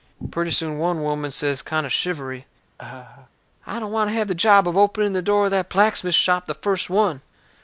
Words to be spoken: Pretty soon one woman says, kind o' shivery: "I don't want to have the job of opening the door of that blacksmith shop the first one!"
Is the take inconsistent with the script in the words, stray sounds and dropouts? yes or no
yes